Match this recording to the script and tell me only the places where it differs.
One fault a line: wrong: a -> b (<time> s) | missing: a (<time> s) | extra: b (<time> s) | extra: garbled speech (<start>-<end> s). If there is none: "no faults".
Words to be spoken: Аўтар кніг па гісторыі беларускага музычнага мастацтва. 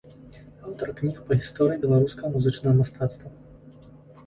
no faults